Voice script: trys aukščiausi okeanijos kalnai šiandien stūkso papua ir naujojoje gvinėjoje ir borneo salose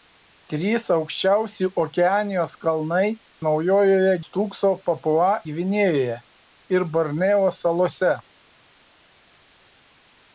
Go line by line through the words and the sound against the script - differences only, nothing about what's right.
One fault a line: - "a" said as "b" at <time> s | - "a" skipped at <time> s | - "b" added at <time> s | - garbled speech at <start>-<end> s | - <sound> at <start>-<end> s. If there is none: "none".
- "šiandien" said as "naujojoje" at 3.5 s
- "ir naujojoje" skipped at 5.3 s